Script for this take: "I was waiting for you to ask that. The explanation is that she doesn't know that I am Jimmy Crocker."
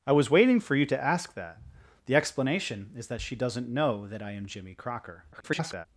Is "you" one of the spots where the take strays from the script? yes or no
no